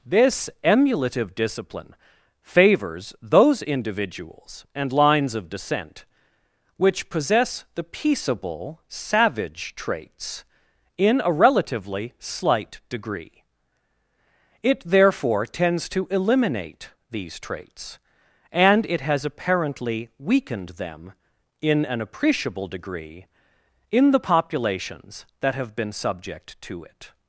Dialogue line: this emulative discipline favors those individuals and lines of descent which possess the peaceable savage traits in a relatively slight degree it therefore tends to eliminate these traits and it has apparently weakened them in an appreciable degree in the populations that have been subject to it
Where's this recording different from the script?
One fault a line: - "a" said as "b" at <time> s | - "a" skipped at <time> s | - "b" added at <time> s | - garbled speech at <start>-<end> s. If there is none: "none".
none